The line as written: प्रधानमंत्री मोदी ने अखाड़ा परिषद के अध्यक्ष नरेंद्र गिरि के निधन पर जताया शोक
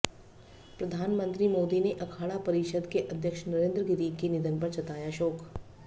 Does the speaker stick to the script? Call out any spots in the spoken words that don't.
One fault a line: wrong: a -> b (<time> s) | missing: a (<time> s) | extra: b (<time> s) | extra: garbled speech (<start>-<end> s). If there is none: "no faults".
no faults